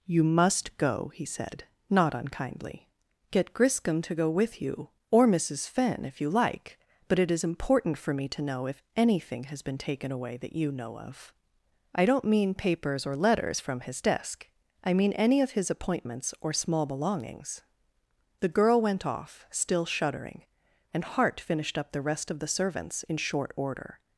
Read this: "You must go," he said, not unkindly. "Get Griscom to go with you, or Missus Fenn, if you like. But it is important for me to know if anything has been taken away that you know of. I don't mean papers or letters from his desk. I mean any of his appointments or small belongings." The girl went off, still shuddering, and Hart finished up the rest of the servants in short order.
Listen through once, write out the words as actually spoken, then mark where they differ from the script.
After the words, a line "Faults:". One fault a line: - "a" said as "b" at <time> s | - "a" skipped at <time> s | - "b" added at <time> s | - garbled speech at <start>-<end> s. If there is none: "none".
"You must go," he said, not unkindly. "Get Griscom to go with you, or Missus Fenn, if you like. But it is important for me to know if anything has been taken away that you know of. I don't mean papers or letters from his desk. I mean any of his appointments or small belongings." The girl went off, still shuddering, and Hart finished up the rest of the servants in short order.
Faults:
none